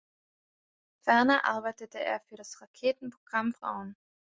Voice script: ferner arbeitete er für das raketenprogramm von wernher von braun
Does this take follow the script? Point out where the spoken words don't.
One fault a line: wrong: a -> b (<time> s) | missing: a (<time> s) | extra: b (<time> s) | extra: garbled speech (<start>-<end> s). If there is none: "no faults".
missing: von wernher von (3.5 s)